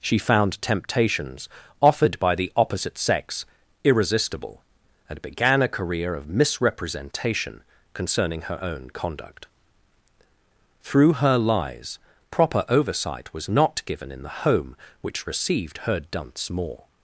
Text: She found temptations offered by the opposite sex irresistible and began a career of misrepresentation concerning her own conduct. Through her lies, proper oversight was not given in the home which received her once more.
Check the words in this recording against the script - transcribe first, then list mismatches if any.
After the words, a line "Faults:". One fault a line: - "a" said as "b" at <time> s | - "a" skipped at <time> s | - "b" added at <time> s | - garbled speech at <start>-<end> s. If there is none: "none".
She found temptations offered by the opposite sex irresistible and began a career of misrepresentation concerning her own conduct. Through her lies, proper oversight was not given in the home which received her dunce more.
Faults:
- "once" said as "dunce" at 16.0 s